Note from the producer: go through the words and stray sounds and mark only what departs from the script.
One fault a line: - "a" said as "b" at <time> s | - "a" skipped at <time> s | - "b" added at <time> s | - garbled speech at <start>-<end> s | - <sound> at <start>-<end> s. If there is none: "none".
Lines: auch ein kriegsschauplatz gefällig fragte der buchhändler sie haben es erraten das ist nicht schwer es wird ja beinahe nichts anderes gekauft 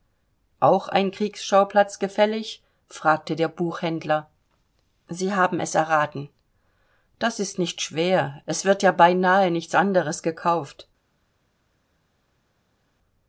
none